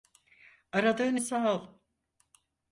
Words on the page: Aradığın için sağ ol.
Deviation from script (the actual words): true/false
true